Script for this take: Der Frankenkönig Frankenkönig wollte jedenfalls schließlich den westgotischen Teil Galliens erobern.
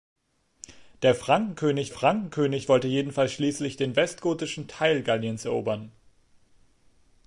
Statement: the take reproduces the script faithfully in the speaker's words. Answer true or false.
true